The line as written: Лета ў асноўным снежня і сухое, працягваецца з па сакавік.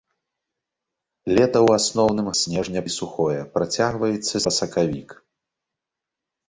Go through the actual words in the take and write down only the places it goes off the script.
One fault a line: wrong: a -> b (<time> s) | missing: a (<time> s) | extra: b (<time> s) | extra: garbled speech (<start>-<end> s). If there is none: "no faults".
no faults